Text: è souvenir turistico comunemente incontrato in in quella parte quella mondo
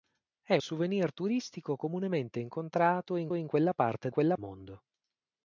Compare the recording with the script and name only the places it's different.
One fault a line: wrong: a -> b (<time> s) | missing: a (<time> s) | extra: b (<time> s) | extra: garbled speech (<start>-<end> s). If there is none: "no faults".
no faults